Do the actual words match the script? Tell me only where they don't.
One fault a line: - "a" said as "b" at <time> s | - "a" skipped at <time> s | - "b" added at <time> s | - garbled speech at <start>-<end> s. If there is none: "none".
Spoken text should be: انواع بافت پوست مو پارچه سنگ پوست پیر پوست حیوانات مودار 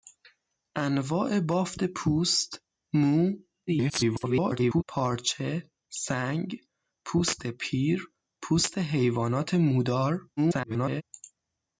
- garbled speech at 3.7-4.8 s
- garbled speech at 10.4-11.0 s